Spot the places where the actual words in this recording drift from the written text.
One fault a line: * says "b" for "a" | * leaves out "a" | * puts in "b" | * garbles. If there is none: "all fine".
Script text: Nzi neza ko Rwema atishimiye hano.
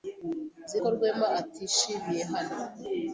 * leaves out "neza"